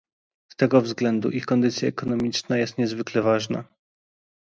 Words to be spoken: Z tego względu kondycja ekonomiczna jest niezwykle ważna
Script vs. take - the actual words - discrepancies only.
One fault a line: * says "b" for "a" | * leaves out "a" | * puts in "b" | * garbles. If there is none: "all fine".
* puts in "ich"